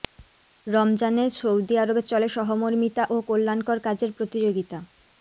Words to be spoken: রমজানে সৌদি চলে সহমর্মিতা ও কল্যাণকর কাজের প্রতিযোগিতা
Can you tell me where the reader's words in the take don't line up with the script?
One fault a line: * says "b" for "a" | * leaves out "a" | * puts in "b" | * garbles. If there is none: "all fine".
* puts in "আরবে"